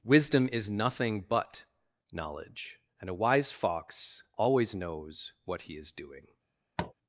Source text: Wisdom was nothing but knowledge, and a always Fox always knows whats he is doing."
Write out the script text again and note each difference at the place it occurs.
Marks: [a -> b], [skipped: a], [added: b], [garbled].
Wisdom [was -> is] nothing but knowledge, and a [always -> wise] Fox always knows [whats -> what] he is doing."